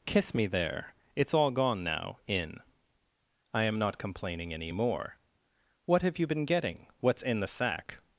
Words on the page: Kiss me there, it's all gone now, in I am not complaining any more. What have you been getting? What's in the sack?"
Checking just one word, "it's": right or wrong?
right